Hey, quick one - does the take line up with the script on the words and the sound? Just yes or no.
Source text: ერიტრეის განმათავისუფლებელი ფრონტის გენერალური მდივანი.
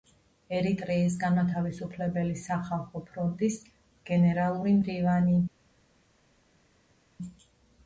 no